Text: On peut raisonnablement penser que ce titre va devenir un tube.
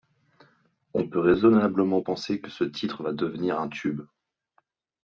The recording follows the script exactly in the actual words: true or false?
true